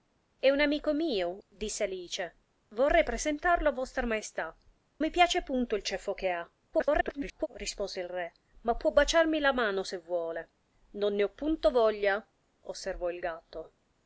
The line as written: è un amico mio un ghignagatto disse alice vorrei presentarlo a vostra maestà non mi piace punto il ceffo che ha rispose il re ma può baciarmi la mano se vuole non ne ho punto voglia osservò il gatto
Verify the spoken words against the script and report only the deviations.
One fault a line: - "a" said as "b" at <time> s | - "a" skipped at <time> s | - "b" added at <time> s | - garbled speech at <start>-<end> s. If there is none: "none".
- "un ghignagatto" skipped at 1.4 s
- "non" skipped at 4.6 s
- garbled speech at 6.7-7.5 s